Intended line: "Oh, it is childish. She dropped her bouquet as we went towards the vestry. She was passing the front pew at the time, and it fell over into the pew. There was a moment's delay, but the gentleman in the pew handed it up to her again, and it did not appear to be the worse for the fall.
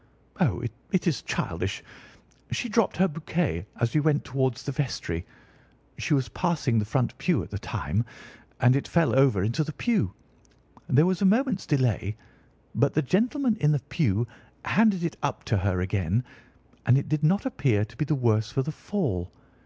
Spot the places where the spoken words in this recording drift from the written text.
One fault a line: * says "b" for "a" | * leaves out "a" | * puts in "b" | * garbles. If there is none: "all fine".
all fine